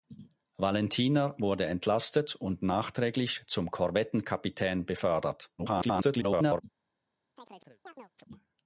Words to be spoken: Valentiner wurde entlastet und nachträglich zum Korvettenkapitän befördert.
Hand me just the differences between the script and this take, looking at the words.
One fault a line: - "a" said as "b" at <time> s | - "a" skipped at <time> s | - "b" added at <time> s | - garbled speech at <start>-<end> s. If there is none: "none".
- garbled speech at 5.6-6.6 s